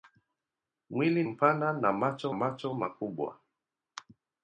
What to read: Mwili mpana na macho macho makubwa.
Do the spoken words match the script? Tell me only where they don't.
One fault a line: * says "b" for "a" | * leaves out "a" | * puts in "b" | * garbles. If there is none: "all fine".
all fine